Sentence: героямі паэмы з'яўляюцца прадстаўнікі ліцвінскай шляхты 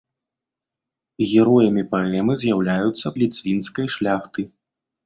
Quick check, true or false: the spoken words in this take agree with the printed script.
false